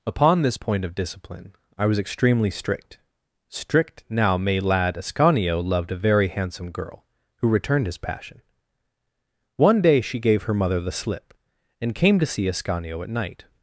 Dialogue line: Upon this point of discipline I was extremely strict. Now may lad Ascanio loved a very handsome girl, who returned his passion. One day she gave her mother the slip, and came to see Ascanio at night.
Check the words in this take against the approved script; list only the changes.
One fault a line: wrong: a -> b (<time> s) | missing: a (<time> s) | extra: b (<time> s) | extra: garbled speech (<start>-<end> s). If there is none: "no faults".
extra: strict (3.5 s)